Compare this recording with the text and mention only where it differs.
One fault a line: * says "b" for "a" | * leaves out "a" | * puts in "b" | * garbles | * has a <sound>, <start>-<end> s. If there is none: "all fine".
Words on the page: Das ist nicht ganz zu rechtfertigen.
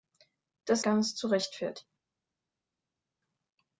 * leaves out "ist nicht"